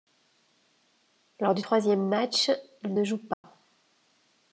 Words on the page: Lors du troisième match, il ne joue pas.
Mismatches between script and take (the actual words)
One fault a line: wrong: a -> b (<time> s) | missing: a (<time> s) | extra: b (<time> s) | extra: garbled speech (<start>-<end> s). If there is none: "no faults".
no faults